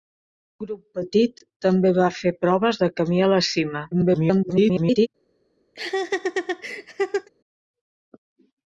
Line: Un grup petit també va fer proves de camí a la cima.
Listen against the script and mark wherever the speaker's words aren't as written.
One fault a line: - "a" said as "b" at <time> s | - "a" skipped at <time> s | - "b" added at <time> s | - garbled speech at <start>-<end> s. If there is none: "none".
- garbled speech at 3.9-5.1 s